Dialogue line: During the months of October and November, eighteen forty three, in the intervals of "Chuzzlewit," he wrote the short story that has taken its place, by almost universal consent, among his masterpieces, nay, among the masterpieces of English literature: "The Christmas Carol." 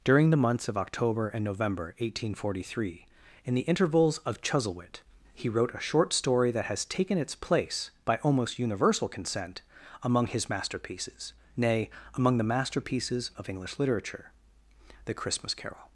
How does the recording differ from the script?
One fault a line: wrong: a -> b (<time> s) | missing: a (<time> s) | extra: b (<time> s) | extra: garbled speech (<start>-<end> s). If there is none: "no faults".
wrong: the -> a (5.8 s)